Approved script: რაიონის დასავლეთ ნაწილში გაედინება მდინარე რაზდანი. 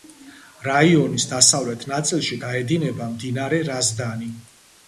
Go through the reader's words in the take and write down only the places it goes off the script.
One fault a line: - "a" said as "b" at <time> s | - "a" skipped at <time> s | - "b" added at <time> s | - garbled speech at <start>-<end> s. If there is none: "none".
none